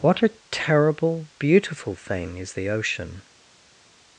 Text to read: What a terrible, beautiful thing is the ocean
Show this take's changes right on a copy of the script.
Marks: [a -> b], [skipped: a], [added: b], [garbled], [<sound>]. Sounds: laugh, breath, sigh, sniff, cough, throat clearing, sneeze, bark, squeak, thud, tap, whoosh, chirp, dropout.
What a terrible, beautiful thing is the ocean